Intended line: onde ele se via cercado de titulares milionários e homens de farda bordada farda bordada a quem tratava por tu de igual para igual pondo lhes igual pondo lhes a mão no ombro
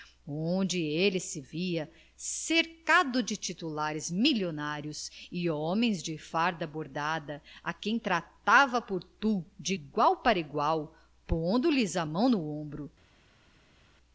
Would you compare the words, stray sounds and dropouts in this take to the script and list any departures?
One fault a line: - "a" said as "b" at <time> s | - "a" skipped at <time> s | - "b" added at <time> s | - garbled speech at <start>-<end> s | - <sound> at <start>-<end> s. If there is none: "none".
- "farda bordada" skipped at 7.4 s
- "igual pondo lhes" skipped at 11.9 s